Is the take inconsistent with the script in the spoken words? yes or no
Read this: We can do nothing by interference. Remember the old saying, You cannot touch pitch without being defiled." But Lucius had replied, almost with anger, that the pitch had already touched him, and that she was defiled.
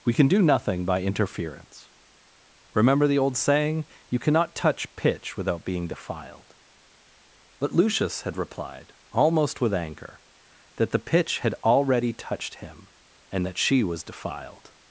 no